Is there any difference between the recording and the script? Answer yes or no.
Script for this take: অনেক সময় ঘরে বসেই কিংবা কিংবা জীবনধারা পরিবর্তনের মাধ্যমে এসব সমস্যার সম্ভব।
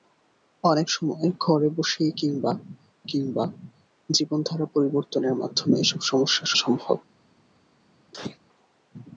no